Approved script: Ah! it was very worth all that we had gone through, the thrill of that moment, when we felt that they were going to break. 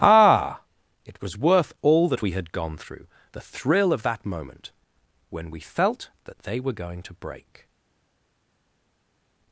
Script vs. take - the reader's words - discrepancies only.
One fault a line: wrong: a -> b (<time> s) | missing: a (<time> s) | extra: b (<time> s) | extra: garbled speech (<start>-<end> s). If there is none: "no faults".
missing: very (1.4 s)